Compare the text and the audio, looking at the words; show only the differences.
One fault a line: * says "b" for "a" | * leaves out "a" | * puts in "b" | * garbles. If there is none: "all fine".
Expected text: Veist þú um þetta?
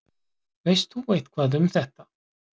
* puts in "eitthvað"